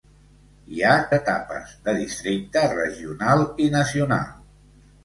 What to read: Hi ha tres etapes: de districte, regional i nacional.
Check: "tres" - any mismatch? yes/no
yes